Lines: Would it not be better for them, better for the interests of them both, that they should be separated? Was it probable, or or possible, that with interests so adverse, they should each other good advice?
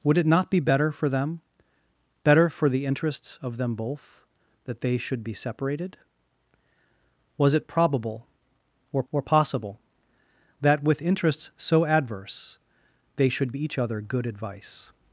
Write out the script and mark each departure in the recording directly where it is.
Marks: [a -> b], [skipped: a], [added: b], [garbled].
Would it not be better for them, better for the interests of them both, that they should be separated? Was it probable, or or possible, that with interests so adverse, they should each other good advice?